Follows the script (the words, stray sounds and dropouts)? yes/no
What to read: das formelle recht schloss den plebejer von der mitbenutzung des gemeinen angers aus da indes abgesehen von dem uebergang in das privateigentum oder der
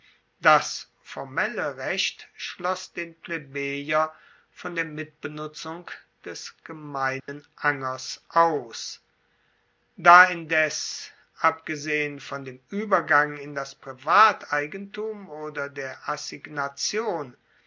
no